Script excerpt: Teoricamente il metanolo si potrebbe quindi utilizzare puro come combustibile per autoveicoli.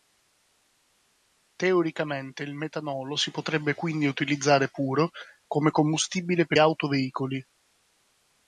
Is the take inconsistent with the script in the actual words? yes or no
no